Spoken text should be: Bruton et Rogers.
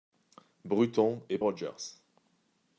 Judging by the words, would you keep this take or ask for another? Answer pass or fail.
pass